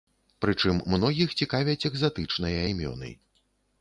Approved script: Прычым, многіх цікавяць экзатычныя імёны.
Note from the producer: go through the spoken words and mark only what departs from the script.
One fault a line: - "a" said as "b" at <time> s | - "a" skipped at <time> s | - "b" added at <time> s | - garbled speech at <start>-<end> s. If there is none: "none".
none